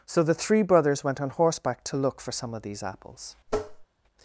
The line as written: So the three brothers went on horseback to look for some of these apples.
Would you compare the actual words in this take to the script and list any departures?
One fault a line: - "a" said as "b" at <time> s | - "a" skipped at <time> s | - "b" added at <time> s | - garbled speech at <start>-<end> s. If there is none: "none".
none